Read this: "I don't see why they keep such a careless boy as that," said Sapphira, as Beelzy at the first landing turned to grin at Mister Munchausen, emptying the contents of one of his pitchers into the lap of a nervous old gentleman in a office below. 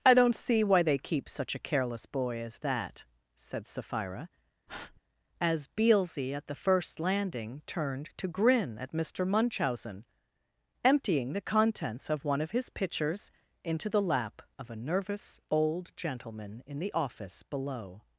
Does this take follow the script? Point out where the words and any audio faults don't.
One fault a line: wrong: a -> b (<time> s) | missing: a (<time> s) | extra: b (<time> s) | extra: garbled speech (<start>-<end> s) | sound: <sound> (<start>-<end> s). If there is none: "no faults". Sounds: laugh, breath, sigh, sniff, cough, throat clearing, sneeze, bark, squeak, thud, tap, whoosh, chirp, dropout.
sound: breath (4.7-5.0 s)
wrong: a -> the (16.8 s)